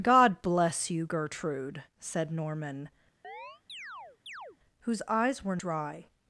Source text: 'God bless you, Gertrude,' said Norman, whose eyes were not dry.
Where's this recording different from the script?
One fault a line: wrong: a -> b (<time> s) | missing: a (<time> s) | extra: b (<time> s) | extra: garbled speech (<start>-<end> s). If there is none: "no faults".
missing: not (5.6 s)